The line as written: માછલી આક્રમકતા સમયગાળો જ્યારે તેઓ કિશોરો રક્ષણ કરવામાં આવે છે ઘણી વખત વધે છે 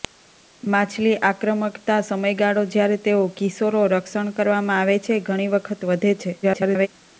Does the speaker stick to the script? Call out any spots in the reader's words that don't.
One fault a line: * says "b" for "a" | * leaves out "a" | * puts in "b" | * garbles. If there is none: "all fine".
* garbles